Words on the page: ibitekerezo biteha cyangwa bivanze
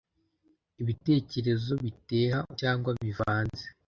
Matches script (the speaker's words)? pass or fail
pass